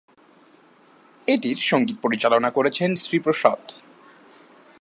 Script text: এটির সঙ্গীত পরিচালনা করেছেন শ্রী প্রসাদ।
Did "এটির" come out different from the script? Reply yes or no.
no